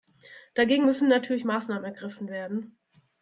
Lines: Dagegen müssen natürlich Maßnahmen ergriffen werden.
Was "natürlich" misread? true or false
false